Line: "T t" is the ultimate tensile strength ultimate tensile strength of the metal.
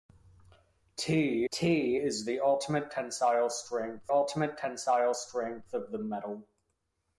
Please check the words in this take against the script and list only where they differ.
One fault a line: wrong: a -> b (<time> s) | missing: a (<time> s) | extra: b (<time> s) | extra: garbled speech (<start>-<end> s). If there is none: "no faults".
no faults